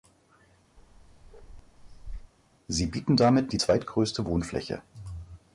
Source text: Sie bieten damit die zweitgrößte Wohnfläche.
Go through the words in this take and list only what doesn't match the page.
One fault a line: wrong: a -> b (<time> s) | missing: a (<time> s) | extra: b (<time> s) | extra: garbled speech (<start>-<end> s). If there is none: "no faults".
no faults